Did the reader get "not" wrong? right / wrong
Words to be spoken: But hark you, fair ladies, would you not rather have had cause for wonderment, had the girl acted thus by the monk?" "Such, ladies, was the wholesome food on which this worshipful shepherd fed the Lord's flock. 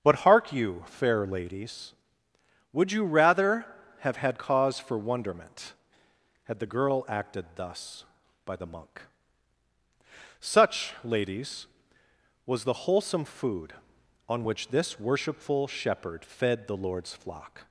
wrong